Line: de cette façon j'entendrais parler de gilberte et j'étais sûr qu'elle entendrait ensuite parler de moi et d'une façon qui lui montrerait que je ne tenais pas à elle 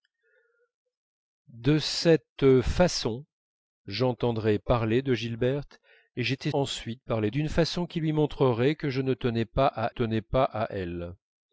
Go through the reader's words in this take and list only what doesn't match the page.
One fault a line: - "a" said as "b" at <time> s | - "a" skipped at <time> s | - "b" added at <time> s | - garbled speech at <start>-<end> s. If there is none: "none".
- "sûr qu'elle entendrait" skipped at 6.5 s
- "de moi et" skipped at 7.3 s
- "tenais pas à" added at 9.9 s